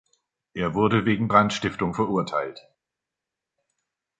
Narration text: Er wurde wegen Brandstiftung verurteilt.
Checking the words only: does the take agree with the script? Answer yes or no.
yes